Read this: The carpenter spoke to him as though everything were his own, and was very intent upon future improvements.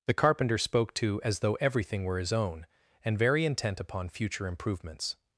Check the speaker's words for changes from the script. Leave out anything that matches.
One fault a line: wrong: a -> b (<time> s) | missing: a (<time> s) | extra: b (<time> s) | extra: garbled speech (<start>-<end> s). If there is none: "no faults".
missing: him (1.2 s)
missing: was (3.2 s)